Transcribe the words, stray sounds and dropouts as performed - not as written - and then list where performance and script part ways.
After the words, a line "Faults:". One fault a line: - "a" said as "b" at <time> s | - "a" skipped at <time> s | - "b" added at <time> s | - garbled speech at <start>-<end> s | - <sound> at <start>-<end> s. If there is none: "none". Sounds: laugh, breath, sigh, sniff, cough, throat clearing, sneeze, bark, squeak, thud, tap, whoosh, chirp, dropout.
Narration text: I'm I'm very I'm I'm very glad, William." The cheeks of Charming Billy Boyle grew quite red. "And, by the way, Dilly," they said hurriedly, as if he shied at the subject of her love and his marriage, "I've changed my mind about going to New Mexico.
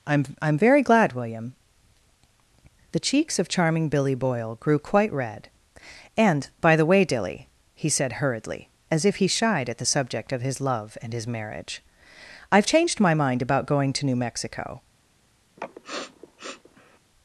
I'm I'm very glad, William." The cheeks of Charming Billy Boyle grew quite red. "And, by the way, Dilly," he said hurriedly, as if he shied at the subject of his love and his marriage, "I've changed my mind about going to New Mexico.
Faults:
- "I'm I'm very" skipped at 0.8 s
- "they" said as "he" at 7.8 s
- "her" said as "his" at 10.4 s
- sniff at 15.6-17.0 s